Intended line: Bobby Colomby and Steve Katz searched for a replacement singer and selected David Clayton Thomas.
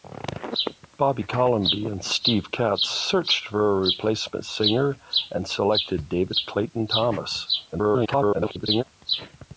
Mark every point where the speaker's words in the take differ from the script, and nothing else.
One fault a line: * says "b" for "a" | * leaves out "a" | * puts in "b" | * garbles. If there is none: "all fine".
* garbles